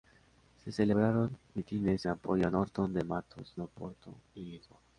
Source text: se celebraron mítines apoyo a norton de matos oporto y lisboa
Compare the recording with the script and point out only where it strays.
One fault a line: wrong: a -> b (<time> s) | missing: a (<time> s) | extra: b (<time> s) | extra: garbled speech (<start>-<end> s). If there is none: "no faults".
no faults